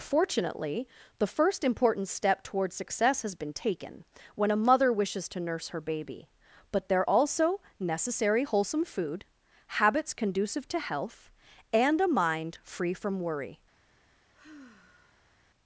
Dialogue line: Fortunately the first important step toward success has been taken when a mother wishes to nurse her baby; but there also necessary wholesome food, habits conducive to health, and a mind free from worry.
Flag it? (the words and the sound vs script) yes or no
yes